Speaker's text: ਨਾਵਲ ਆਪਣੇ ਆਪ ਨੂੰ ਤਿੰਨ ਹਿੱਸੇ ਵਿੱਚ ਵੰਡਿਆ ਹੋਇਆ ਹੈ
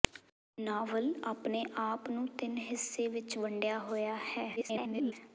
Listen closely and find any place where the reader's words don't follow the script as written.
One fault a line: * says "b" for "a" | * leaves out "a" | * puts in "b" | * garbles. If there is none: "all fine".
* garbles